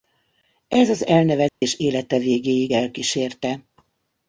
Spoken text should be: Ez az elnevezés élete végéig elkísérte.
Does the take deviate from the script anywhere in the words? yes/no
no